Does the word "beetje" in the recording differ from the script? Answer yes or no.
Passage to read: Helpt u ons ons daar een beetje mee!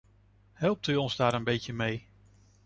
no